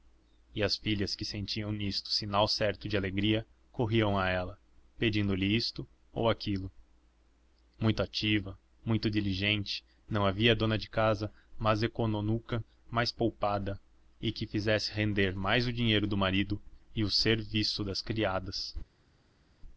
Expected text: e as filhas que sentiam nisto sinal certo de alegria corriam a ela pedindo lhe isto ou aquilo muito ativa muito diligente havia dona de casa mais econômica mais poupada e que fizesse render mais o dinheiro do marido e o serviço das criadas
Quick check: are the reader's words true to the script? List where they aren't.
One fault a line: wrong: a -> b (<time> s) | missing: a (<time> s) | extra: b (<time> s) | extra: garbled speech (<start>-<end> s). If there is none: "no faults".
extra: não (10.1 s)